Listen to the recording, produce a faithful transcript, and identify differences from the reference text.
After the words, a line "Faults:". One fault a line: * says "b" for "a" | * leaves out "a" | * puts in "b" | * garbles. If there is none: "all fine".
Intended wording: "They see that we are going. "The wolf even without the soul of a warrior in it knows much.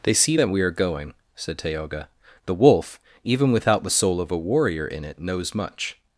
"They see that we are going," said Tayoga. "The wolf even without the soul of a warrior in it knows much.
Faults:
* puts in "said Tayoga"